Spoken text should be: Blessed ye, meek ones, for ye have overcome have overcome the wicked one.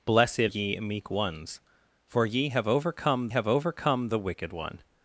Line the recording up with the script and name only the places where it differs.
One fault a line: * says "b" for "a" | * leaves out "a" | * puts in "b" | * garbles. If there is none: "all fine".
all fine